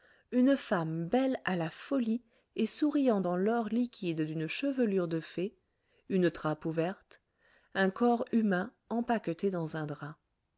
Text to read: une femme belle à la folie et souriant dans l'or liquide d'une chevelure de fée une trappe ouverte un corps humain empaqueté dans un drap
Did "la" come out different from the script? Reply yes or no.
no